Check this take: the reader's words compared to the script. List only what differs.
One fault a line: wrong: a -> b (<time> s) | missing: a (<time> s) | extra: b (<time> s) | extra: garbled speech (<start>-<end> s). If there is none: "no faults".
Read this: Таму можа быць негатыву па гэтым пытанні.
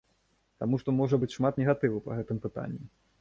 extra: што (0.8 s)
extra: шмат (1.4 s)